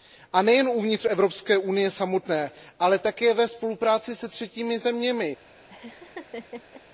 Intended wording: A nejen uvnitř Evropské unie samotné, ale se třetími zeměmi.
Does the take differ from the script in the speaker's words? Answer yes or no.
yes